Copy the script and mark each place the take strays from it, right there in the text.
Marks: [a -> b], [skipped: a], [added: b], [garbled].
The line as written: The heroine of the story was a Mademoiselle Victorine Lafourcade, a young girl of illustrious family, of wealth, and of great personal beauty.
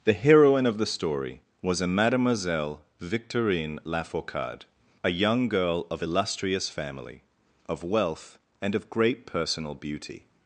The heroine of the story was a Mademoiselle Victorine Lafourcade, a young girl of illustrious family, of wealth, and of great personal beauty.